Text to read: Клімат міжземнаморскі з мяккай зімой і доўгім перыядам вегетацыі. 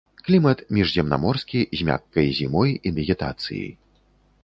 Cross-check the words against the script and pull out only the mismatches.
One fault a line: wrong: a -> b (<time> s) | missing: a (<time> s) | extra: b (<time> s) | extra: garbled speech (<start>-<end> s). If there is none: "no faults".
missing: доўгім перыядам (2.9 s)